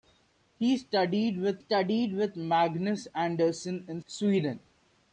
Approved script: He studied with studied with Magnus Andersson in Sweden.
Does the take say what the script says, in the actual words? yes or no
yes